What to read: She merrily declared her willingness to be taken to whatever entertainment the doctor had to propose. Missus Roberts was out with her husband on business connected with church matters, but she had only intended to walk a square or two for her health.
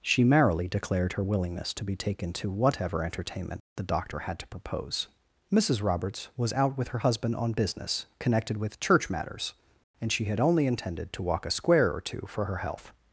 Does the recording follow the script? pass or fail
fail